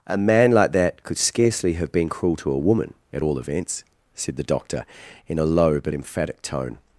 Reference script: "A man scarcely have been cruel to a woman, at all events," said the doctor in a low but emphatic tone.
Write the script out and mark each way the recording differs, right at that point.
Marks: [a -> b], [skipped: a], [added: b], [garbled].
"A man [added: like that could] scarcely have been cruel to a woman, at all events," said the doctor in a low but emphatic tone.